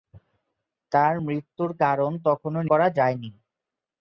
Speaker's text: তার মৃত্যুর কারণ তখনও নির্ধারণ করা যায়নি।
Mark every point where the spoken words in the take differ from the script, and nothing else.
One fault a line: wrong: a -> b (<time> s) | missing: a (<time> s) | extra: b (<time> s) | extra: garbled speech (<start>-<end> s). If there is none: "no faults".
missing: নির্ধারণ (2.6 s)